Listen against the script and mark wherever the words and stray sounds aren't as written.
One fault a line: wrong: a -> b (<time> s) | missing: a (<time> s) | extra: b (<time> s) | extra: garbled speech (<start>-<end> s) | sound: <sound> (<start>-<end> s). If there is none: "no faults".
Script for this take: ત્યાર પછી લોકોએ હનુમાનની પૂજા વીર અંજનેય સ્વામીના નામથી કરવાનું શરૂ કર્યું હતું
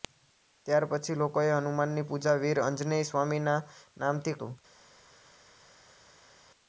missing: કરવાનું શરૂ કર્યું (4.4 s)